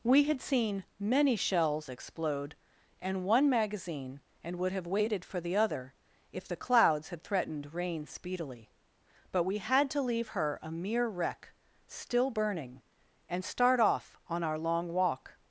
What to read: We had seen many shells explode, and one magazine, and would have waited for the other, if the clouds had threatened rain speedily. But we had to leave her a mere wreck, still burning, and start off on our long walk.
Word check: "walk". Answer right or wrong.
right